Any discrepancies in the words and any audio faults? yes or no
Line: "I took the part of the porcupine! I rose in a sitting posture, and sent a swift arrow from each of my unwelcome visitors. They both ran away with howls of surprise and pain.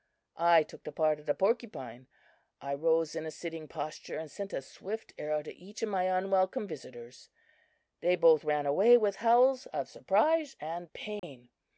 yes